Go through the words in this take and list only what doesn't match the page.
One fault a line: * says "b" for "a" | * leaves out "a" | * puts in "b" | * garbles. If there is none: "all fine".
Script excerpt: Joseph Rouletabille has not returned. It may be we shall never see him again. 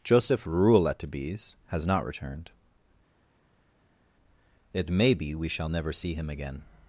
all fine